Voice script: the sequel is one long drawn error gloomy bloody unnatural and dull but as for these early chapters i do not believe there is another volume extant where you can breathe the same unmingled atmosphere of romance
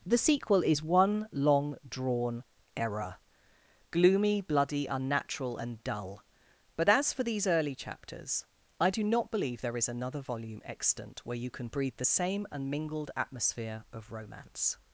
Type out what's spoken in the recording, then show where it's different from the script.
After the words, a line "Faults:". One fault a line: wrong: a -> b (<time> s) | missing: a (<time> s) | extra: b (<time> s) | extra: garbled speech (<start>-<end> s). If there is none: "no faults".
the sequel is one long drawn error gloomy bloody unnatural and dull but as for these early chapters i do not believe there is another volume extant where you can breathe the same unmingled atmosphere of romance
Faults:
no faults